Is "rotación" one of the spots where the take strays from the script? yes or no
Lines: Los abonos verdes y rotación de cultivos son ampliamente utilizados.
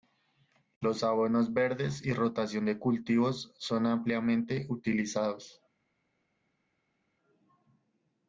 no